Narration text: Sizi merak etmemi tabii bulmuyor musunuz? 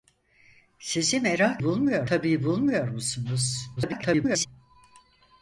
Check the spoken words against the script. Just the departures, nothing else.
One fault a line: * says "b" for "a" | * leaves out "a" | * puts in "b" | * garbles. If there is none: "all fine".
* says "bulmuyor" for "etmemi"
* garbles